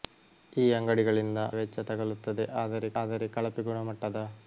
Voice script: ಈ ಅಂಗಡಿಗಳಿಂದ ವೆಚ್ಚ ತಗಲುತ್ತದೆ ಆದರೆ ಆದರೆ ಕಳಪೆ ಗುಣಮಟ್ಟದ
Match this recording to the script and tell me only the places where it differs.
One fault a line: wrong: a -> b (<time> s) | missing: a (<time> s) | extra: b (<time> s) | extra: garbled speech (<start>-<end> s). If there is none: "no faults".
no faults